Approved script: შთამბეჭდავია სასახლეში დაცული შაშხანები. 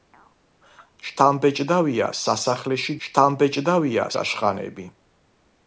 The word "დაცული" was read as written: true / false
false